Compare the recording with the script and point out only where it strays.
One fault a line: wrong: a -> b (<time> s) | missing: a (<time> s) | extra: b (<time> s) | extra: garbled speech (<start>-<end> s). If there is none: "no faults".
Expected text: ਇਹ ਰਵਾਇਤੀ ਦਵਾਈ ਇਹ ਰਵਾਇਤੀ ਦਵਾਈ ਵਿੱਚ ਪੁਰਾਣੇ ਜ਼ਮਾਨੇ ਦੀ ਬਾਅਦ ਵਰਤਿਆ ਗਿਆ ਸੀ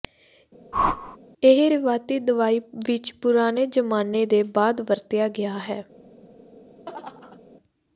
missing: ਇਹ ਰਵਾਇਤੀ ਦਵਾਈ (2.6 s)
wrong: ਦੀ -> ਦੇ (4.3 s)
wrong: ਸੀ -> ਹੈ (5.6 s)